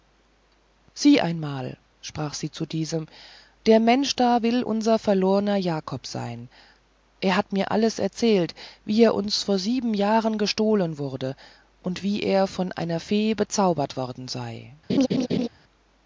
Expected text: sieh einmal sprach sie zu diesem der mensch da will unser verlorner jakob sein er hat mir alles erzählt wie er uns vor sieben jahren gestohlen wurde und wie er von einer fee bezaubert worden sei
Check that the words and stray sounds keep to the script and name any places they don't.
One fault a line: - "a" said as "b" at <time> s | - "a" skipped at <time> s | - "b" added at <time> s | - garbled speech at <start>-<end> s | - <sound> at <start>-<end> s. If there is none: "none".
- laugh at 14.9-15.5 s